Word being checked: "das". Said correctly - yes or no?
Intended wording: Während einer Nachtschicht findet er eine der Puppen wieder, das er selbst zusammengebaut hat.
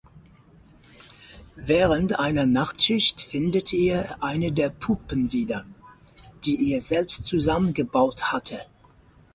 no